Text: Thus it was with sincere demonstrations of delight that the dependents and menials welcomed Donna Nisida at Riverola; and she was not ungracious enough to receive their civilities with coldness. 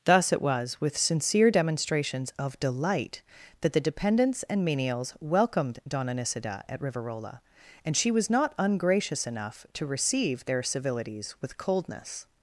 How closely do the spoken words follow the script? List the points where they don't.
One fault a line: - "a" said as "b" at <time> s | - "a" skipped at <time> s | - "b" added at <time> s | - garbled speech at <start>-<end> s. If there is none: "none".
none